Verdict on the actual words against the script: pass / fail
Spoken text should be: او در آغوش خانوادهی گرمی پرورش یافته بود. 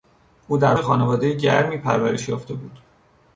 fail